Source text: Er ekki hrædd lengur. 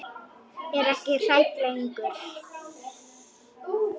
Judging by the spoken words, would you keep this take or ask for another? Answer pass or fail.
pass